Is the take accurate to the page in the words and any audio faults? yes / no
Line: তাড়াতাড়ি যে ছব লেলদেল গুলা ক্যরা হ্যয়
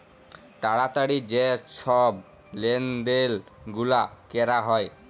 yes